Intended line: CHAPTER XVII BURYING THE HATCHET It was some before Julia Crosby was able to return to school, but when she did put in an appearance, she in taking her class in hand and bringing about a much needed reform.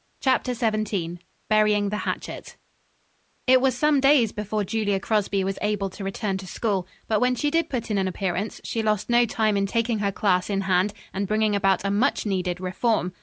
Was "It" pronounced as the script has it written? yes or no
yes